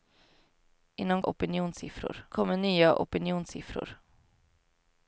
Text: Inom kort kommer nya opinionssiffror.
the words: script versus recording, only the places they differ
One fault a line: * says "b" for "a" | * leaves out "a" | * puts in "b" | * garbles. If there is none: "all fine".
* says "opinionssiffror" for "kort"